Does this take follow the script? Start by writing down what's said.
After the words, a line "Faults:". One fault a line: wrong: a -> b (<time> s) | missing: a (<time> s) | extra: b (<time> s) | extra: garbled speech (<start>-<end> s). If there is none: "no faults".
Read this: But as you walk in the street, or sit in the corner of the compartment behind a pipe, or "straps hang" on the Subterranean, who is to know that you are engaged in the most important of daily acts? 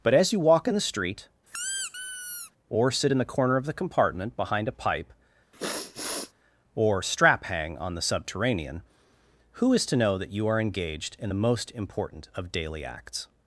But as you walk in the street, or sit in the corner of the compartment behind a pipe, or "strap hang" on the Subterranean, who is to know that you are engaged in the most important of daily acts?
Faults:
wrong: straps -> strap (7.0 s)